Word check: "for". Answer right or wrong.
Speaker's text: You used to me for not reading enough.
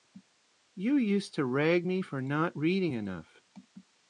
right